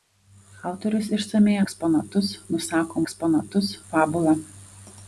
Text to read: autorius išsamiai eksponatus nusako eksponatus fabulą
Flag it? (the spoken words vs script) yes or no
no